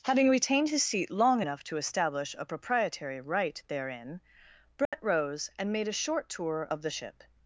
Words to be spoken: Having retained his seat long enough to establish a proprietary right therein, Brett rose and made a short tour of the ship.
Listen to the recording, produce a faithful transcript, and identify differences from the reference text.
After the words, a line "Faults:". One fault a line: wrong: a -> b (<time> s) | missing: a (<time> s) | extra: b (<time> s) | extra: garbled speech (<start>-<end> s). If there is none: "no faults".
Having retained his seat long enough to establish a proprietary right therein, Brett rose and made a short tour of the ship.
Faults:
no faults